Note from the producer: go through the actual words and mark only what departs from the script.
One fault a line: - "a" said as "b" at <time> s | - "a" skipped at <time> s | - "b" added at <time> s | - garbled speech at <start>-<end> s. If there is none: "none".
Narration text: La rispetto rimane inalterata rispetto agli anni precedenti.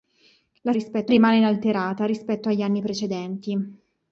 none